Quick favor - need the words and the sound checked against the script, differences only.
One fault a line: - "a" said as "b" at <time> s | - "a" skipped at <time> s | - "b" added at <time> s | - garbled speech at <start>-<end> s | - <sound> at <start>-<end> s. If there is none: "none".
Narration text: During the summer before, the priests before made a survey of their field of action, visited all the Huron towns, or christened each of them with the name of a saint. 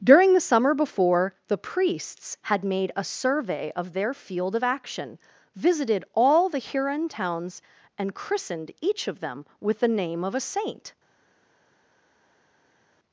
- "before" said as "had" at 2.4 s
- "or" said as "and" at 8.0 s